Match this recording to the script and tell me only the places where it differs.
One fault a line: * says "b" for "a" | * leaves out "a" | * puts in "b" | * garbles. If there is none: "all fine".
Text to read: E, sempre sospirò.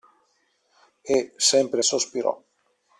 all fine